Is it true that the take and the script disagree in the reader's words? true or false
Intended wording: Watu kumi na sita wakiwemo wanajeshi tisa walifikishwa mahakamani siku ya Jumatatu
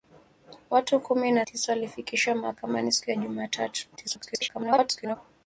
true